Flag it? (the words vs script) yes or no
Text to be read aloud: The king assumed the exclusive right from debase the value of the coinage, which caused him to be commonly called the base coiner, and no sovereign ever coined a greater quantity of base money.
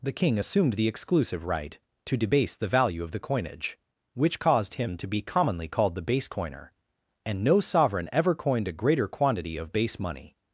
yes